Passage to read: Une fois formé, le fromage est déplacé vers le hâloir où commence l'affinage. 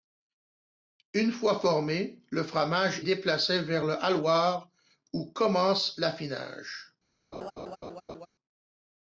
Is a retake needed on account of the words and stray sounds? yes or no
yes